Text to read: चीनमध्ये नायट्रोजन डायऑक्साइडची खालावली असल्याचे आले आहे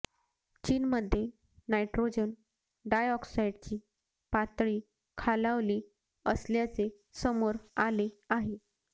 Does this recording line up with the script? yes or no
no